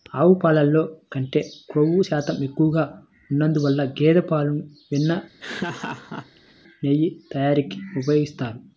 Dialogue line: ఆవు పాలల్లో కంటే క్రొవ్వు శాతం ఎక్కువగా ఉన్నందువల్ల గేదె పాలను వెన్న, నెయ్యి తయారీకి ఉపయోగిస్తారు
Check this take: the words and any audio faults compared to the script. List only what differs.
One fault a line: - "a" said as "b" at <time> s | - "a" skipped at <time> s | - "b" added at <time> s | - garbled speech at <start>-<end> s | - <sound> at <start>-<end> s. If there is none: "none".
- laugh at 5.4-6.5 s